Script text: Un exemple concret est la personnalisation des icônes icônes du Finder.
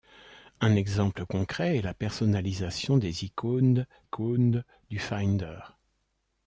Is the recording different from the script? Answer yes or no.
no